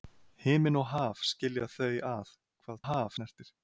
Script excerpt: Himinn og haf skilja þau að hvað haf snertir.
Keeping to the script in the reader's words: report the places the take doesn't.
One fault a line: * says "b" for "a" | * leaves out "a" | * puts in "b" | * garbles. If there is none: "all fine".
all fine